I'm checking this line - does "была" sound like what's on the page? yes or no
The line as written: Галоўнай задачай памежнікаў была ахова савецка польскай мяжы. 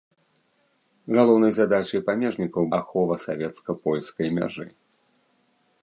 no